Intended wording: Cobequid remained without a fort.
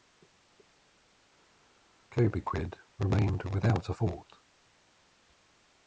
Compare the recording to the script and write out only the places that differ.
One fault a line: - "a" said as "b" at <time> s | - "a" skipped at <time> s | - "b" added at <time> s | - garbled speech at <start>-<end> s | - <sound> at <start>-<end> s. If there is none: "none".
none